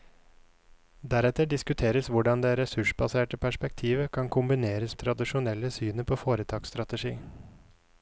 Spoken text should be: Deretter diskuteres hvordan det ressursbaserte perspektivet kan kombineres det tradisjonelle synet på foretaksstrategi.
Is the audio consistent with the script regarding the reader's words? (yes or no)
yes